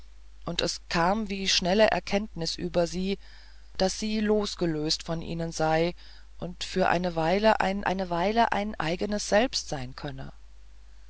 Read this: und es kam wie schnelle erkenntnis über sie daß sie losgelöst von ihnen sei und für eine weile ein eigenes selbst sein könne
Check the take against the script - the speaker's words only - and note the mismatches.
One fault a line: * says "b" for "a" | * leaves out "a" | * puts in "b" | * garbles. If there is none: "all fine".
* puts in "eine weile ein"